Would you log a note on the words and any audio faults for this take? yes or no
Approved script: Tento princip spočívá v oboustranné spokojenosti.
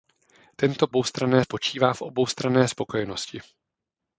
yes